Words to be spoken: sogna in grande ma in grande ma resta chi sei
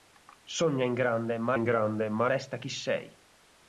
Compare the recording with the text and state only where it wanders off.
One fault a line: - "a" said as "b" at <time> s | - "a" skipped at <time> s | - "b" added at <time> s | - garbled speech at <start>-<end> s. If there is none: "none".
none